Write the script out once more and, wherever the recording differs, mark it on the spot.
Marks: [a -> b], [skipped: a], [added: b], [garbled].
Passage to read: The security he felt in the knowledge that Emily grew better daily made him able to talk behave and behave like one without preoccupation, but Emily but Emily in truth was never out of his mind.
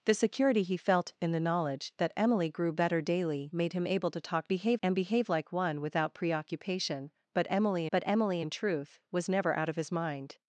The security he felt in the knowledge that Emily grew better daily made him able to talk behave and behave like one without preoccupation, but Emily but Emily in truth was never out of his mind.